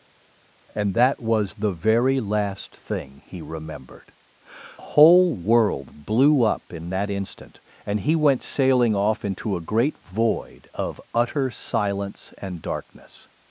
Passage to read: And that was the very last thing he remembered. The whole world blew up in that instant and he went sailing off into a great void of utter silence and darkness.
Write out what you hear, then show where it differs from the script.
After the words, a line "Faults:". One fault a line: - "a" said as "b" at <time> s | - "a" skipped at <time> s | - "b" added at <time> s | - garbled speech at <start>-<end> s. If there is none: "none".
And that was the very last thing he remembered. Whole world blew up in that instant and he went sailing off into a great void of utter silence and darkness.
Faults:
- "The" skipped at 4.1 s